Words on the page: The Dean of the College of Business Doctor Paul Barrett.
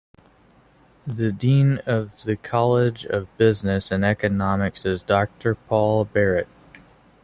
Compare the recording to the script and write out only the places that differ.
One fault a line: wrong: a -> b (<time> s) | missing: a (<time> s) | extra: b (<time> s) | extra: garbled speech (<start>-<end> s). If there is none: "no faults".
extra: and Economics is (3.9 s)